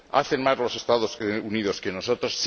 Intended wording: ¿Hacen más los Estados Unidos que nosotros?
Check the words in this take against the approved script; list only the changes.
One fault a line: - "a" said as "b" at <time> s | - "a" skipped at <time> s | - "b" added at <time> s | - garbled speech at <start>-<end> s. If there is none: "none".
none